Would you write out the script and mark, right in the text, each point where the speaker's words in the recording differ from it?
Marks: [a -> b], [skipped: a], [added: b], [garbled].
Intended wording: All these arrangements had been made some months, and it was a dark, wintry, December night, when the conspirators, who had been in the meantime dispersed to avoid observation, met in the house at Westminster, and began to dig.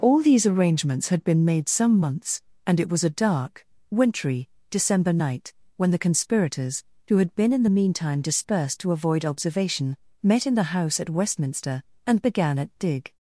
All these arrangements had been made some months, and it was a dark, wintry, December night, when the conspirators, who had been in the meantime dispersed to avoid observation, met in the house at Westminster, and began [to -> at] dig.